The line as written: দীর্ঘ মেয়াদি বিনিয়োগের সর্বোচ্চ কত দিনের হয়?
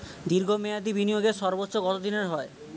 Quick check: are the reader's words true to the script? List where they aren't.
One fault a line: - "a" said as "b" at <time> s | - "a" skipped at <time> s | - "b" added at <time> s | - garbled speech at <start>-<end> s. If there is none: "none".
none